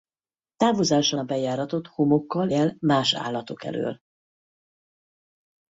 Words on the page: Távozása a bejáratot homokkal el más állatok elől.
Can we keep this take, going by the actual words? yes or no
yes